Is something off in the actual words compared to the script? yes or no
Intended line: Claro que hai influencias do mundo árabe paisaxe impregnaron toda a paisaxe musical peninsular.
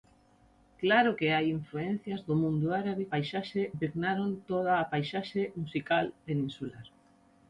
no